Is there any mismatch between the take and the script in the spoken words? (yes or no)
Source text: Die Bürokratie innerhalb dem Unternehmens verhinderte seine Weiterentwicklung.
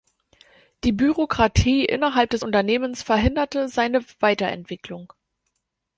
yes